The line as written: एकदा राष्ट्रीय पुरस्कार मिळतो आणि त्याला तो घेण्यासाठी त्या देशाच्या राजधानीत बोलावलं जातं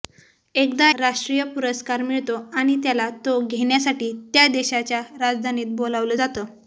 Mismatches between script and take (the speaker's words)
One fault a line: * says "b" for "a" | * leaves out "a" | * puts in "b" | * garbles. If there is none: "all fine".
all fine